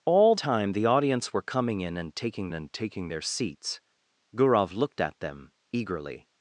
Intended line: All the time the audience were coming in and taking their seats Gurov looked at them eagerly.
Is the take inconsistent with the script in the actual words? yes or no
yes